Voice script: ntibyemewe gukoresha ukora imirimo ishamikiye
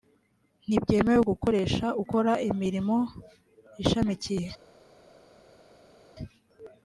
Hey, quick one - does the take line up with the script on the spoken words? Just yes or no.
yes